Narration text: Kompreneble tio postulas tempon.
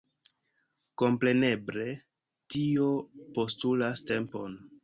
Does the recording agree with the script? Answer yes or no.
yes